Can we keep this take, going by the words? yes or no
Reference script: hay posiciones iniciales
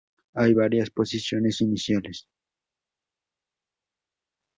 no